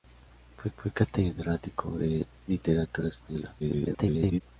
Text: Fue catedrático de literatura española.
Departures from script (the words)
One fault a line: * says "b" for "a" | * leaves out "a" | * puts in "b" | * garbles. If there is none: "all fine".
* puts in "fue"
* garbles